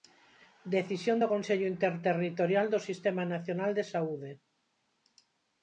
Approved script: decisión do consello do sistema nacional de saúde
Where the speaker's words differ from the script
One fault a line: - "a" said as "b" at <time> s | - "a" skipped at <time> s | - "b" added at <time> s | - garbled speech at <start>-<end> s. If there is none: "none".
- "interterritorial" added at 1.7 s